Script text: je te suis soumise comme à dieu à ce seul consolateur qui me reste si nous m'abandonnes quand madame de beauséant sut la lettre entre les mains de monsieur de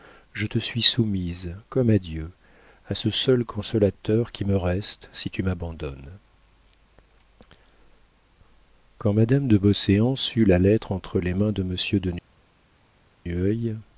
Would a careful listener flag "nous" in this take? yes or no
yes